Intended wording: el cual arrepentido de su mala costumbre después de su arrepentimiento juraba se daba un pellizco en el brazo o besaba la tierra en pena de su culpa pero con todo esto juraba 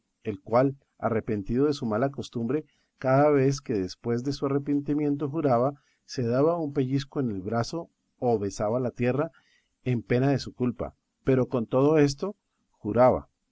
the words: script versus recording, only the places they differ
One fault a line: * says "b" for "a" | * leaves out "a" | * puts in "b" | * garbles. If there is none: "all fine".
* puts in "cada vez que"